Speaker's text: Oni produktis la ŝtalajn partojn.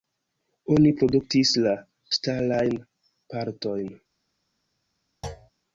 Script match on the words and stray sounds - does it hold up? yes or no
no